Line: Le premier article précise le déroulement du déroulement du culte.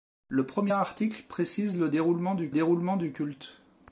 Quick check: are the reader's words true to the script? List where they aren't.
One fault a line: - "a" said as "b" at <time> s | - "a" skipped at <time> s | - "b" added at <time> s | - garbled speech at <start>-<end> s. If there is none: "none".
none